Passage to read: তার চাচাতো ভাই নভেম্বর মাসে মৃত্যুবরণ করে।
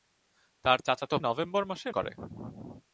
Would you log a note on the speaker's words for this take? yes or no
yes